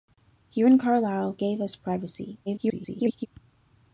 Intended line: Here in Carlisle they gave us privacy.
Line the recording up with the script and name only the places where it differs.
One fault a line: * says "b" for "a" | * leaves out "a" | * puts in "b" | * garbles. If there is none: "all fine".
* leaves out "they"
* garbles